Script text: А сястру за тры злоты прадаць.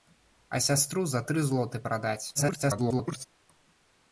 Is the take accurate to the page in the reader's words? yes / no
no